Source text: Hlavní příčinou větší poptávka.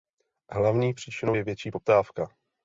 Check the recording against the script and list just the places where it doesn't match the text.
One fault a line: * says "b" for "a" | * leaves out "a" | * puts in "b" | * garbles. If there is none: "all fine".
* puts in "je"